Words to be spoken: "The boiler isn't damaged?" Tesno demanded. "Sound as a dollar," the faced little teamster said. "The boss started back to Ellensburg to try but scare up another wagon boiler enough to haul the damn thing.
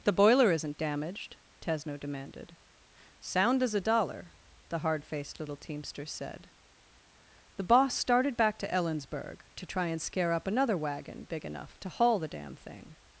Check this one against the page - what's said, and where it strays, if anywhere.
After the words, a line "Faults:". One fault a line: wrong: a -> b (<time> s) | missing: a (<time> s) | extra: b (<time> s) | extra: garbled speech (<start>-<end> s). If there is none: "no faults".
"The boiler isn't damaged?" Tesno demanded. "Sound as a dollar," the hard faced little teamster said. "The boss started back to Ellensburg to try and scare up another wagon big enough to haul the damn thing.
Faults:
extra: hard (4.8 s)
wrong: but -> and (9.9 s)
wrong: boiler -> big (11.2 s)